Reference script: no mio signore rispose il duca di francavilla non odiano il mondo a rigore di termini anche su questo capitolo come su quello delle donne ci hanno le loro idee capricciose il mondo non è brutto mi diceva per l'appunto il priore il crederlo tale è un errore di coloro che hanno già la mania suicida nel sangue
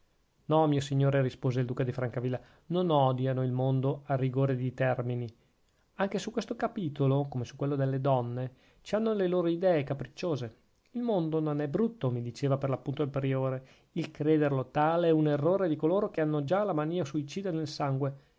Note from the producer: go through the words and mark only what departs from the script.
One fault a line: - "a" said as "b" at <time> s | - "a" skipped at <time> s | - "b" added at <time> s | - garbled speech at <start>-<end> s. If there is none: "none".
none